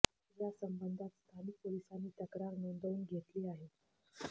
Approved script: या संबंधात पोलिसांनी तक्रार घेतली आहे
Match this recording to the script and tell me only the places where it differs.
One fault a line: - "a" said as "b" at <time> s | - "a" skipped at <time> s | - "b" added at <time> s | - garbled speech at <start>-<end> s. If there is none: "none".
- "स्थानिक" added at 1.1 s
- "नोंदवून" added at 2.5 s